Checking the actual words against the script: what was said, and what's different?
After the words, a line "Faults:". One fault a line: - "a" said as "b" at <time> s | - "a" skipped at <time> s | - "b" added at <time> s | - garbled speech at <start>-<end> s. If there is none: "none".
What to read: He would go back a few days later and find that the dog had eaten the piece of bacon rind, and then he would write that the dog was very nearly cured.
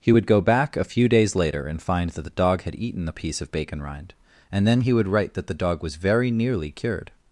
He would go back a few days later and find that the dog had eaten the piece of bacon rind, and then he would write that the dog was very nearly cured.
Faults:
none